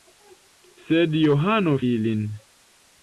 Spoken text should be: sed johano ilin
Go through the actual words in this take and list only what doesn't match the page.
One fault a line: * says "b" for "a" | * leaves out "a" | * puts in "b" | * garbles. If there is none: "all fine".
all fine